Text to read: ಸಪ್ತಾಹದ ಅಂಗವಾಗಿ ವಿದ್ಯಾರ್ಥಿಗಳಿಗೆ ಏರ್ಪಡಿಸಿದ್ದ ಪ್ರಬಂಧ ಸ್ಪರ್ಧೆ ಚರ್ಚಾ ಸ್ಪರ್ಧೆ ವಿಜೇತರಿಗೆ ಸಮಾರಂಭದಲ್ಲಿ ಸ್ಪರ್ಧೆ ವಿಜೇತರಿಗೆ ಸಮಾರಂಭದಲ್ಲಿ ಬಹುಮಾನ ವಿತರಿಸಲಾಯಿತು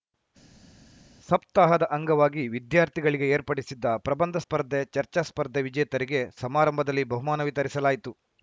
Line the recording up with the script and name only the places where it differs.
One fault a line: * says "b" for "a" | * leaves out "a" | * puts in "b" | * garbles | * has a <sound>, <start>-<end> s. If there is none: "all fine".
* leaves out "ಸ್ಪರ್ಧೆ ವಿಜೇತರಿಗೆ ಸಮಾರಂಭದಲ್ಲಿ"